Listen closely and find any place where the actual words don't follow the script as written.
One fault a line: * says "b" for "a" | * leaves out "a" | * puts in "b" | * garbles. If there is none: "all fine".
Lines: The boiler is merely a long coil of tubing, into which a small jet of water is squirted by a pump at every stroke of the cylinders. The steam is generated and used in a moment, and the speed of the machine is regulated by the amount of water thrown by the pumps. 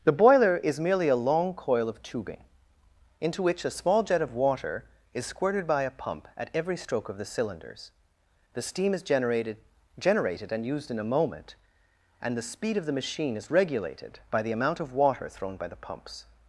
* puts in "generated"